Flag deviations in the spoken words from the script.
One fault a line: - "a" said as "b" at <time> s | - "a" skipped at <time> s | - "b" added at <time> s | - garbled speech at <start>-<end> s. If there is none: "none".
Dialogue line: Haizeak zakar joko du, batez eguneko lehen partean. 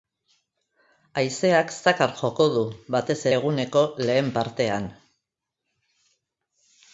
none